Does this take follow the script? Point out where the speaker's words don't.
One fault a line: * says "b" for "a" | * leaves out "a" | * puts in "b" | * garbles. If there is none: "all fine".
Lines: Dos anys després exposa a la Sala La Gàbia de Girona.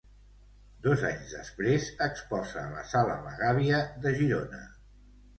all fine